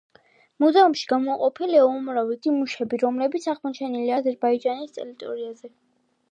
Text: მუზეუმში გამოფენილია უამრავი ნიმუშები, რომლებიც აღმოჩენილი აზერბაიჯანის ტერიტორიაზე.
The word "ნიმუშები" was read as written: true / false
true